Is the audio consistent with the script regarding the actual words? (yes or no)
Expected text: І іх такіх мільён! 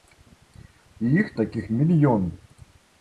yes